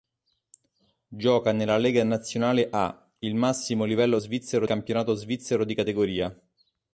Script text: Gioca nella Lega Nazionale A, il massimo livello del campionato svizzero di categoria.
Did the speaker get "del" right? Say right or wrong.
wrong